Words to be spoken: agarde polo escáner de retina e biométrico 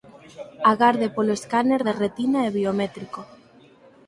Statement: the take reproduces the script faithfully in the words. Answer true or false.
true